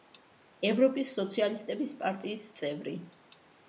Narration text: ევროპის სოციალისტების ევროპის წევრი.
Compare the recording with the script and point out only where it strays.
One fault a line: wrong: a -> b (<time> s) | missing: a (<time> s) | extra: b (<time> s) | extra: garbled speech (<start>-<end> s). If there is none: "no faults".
wrong: ევროპის -> პარტიის (2.0 s)